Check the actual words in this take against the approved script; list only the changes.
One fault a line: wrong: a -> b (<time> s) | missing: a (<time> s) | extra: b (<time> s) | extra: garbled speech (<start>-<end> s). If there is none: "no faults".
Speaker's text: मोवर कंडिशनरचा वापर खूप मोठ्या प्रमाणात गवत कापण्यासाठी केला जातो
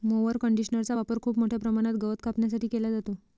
no faults